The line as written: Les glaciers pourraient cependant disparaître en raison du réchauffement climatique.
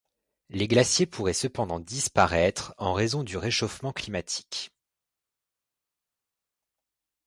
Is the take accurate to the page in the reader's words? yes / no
yes